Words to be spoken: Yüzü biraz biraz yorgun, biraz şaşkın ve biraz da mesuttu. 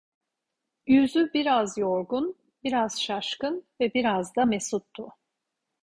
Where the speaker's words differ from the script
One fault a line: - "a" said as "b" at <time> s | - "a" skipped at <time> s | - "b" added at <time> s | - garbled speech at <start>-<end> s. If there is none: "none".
- "biraz" skipped at 1.8 s